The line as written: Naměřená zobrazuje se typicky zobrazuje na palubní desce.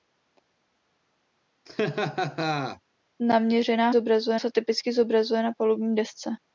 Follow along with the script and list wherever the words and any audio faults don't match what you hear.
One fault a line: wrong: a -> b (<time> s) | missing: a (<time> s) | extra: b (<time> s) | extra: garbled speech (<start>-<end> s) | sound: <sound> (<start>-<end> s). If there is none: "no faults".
sound: laugh (1.7-2.8 s)